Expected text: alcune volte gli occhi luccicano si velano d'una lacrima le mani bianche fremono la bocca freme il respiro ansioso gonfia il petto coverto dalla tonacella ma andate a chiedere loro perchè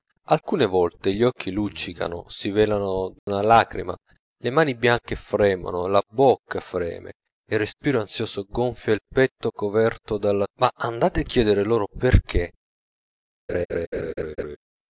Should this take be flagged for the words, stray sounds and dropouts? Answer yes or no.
yes